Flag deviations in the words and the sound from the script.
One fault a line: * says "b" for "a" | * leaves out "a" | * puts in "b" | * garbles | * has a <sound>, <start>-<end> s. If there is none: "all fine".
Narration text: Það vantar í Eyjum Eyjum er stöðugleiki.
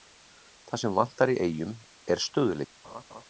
* puts in "sem"
* leaves out "Eyjum"
* has a laugh, 2.8-3.2 s